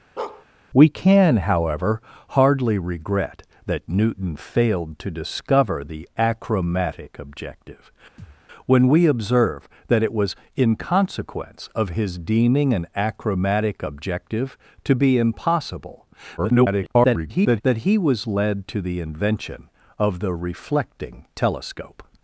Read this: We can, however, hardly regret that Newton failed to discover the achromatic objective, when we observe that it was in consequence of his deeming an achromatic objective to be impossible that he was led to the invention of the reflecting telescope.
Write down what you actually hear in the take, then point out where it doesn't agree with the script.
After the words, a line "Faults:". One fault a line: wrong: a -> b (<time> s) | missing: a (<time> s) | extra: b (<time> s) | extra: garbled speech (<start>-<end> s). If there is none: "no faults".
We can, however, hardly regret that Newton failed to discover the achromatic objective, when we observe that it was in consequence of his deeming an achromatic objective to be impossible [garbled] that he was led to the invention of the reflecting telescope.
Faults:
extra: garbled speech (16.4-17.6 s)